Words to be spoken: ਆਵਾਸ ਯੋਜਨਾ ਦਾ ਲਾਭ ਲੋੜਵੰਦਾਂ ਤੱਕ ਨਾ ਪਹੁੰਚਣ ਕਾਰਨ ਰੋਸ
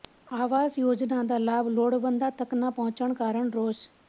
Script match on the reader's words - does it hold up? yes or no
yes